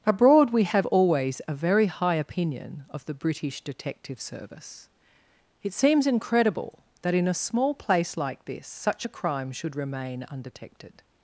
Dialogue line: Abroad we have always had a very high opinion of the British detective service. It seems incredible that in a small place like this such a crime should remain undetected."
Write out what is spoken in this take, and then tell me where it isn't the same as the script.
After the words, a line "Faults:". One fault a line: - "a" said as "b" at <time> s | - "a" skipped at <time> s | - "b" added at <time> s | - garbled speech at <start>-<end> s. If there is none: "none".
Abroad we have always a very high opinion of the British detective service. It seems incredible that in a small place like this such a crime should remain undetected."
Faults:
- "had" skipped at 1.4 s